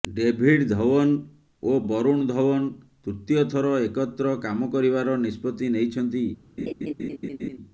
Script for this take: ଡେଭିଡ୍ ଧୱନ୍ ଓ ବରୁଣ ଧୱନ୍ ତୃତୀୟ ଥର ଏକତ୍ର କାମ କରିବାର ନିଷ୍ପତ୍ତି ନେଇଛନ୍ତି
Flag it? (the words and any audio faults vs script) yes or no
yes